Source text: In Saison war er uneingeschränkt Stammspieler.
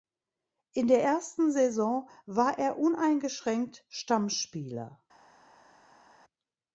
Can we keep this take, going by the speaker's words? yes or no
no